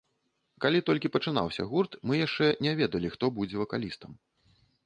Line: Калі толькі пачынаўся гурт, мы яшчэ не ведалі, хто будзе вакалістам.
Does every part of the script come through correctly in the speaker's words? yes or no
yes